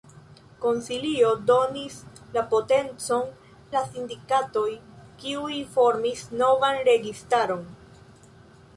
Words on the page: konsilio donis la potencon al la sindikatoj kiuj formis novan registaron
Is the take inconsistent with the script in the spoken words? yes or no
yes